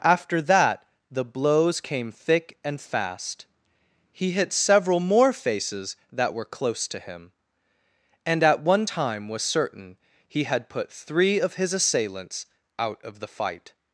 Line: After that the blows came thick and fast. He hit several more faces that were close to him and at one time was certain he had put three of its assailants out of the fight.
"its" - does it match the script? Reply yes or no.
no